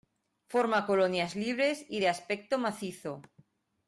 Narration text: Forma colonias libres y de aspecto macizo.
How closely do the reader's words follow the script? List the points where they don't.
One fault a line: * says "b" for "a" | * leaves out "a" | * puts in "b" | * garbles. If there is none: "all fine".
all fine